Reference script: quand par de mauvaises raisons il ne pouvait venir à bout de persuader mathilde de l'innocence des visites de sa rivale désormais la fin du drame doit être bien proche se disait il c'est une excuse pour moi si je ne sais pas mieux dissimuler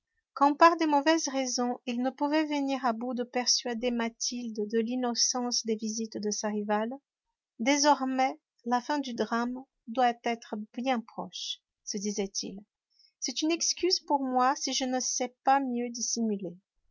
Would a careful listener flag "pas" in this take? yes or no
no